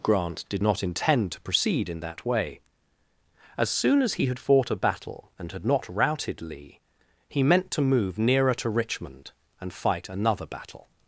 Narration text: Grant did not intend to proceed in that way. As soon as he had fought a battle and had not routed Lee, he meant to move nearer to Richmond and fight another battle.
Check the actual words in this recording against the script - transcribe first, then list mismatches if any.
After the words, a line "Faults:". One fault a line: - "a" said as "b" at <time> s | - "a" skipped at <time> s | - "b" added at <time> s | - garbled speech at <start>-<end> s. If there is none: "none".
Grant did not intend to proceed in that way. As soon as he had fought a battle and had not routed Lee, he meant to move nearer to Richmond and fight another battle.
Faults:
none